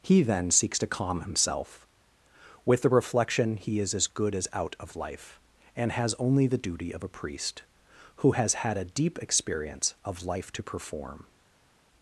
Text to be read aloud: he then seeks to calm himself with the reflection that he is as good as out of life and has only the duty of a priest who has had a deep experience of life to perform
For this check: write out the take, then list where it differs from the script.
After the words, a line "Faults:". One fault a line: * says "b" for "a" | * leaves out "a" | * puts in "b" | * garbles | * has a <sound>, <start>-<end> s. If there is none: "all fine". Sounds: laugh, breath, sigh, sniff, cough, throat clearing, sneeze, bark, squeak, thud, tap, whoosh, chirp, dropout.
he then seeks to calm himself with the reflection he is as good as out of life and has only the duty of a priest who has had a deep experience of life to perform
Faults:
* leaves out "that"